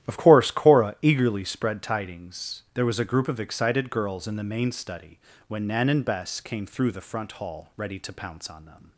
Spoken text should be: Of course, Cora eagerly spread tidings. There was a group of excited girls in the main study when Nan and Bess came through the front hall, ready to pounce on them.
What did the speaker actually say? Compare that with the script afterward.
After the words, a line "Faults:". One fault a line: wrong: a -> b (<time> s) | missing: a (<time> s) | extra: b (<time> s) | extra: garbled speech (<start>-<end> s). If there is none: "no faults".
Of course, Cora eagerly spread tidings. There was a group of excited girls in the main study when Nan and Bess came through the front hall, ready to pounce on them.
Faults:
no faults